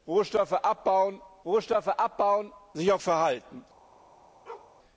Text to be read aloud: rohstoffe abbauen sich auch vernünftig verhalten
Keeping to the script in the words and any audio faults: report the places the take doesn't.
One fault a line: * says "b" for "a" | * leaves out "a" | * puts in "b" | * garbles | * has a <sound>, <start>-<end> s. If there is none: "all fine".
* puts in "rohstoffe abbauen"
* leaves out "vernünftig"
* has a bark, 4.5-4.8 s